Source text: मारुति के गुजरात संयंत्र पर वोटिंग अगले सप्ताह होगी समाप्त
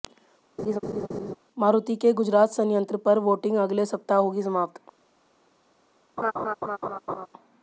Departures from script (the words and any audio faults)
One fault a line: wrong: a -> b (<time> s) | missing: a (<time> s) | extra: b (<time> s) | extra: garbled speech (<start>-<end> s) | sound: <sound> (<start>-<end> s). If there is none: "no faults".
sound: laugh (0.6-1.4 s)
sound: laugh (6.2-7.3 s)